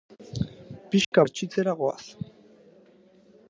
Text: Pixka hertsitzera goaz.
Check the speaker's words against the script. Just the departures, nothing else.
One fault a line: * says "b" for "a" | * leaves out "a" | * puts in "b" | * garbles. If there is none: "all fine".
all fine